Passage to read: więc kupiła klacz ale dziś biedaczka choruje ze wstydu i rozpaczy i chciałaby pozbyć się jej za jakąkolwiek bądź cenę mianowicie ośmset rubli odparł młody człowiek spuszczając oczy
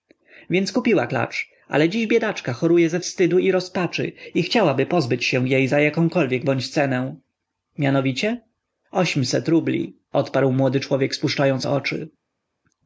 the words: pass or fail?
pass